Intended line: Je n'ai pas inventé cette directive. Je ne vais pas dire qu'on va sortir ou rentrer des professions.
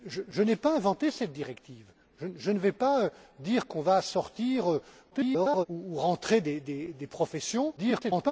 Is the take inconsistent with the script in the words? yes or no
yes